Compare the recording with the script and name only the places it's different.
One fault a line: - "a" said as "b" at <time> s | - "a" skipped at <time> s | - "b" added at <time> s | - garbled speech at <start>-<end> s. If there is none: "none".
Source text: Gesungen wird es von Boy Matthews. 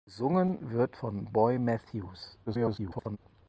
- "es" skipped at 1.0 s
- garbled speech at 2.5-3.2 s